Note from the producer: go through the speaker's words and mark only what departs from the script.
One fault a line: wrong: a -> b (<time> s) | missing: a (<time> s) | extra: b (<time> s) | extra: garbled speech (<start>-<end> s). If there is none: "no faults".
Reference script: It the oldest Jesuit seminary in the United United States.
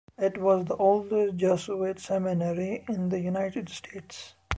extra: was (0.4 s)
missing: United (3.7 s)